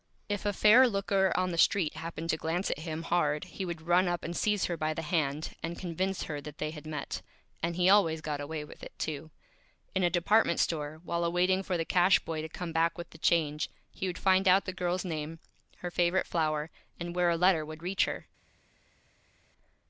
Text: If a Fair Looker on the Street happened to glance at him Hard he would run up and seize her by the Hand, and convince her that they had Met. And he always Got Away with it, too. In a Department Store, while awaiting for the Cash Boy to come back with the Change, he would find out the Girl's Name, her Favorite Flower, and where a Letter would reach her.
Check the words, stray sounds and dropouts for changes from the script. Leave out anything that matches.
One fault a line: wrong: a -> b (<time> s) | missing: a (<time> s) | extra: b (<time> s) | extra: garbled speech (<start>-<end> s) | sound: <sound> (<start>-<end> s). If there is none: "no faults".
no faults